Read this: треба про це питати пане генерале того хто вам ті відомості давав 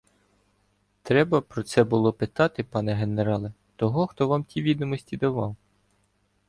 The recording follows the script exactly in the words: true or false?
false